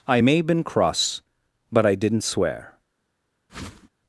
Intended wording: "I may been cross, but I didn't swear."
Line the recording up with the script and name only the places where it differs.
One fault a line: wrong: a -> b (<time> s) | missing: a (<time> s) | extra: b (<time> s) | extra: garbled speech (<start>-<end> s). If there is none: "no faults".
no faults